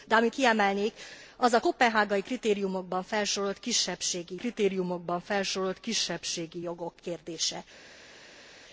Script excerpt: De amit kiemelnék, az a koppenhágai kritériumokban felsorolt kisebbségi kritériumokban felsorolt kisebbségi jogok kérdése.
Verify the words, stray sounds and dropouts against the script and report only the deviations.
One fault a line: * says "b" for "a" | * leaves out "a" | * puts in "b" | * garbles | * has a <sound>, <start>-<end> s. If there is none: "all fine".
all fine